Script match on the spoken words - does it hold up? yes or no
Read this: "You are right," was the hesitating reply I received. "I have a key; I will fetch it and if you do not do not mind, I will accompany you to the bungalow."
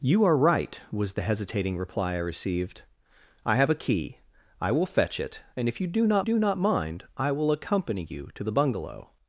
yes